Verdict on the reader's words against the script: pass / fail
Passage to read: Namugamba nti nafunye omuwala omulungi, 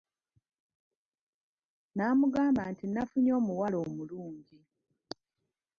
pass